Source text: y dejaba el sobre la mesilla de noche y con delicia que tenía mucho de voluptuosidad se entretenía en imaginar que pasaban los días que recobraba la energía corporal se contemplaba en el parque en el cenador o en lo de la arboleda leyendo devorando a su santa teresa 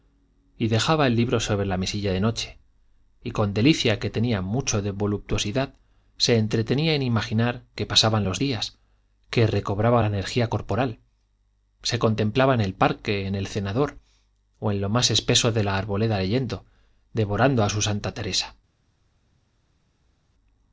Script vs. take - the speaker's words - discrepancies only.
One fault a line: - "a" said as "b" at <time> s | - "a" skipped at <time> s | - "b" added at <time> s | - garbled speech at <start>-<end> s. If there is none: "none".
- "libro" added at 1.1 s
- "más espeso" added at 14.9 s